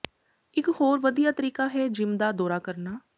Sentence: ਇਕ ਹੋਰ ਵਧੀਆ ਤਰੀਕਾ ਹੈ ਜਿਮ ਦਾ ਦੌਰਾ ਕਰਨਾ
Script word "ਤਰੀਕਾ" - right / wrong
right